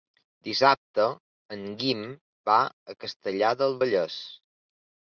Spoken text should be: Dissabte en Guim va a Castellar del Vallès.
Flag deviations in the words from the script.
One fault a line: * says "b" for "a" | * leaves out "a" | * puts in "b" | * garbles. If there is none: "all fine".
all fine